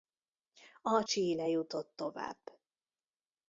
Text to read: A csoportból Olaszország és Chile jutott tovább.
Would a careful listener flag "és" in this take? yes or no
yes